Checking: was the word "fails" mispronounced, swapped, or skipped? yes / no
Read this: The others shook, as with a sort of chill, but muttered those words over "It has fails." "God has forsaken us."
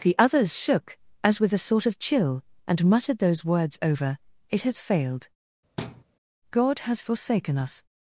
yes